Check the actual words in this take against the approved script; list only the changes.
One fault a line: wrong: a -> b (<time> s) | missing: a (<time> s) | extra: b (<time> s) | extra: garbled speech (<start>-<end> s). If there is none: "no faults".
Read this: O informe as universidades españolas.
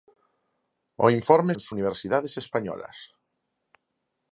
no faults